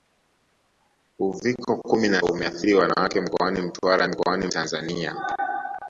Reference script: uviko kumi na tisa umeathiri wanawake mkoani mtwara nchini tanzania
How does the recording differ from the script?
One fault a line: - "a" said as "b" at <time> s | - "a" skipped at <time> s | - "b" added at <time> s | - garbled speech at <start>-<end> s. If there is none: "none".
- "tisa" skipped at 2.2 s
- "nchini" said as "mkoani" at 4.1 s